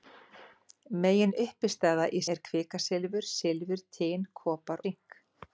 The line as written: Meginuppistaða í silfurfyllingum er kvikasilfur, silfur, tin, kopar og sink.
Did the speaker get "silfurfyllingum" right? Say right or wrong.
wrong